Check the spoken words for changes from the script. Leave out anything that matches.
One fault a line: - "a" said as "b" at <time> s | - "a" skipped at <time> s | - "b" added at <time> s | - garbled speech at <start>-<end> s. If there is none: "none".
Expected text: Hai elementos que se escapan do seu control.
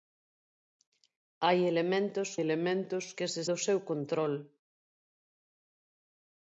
- "elementos" added at 2.4 s
- "escapan" skipped at 3.4 s